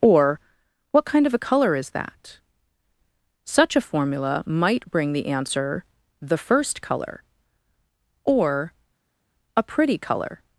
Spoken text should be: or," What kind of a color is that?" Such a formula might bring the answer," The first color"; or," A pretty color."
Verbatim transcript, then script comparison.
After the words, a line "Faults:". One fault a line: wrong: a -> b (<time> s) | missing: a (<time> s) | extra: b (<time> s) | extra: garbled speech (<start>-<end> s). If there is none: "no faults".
or," What kind of a color is that?" Such a formula might bring the answer," The first color"; or," A pretty color."
Faults:
no faults